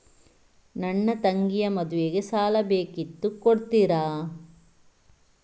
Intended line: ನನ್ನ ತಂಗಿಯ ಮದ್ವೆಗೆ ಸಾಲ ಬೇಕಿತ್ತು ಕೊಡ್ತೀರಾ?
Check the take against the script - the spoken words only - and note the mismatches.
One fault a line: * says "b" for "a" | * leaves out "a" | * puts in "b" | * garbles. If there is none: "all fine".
all fine